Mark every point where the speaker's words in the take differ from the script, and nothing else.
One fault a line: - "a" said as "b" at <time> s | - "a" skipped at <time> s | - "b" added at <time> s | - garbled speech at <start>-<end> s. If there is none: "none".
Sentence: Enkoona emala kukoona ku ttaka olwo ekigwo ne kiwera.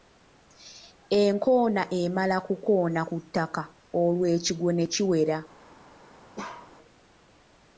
none